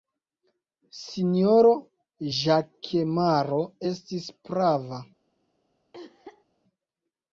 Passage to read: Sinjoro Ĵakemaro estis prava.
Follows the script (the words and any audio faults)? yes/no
no